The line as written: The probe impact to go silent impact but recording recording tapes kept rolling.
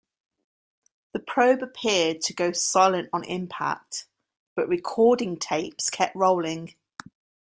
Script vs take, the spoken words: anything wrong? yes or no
yes